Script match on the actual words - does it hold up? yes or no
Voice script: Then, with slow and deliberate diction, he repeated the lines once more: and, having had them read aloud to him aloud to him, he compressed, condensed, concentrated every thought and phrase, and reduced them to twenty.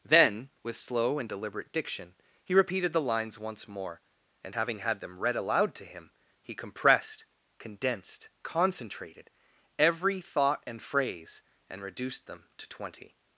no